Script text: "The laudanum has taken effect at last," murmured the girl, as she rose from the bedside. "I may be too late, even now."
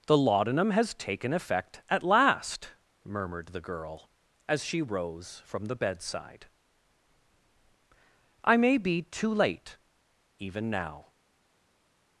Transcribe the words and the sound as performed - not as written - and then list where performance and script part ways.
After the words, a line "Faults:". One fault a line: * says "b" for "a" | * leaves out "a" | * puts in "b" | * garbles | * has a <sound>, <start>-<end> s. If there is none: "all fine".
"The laudanum has taken effect at last," murmured the girl, as she rose from the bedside. "I may be too late, even now."
Faults:
all fine